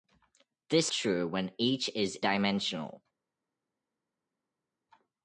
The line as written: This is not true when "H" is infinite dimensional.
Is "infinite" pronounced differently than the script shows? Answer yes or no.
yes